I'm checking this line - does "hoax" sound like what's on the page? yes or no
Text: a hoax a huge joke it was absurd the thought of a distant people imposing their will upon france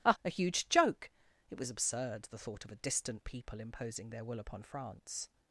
no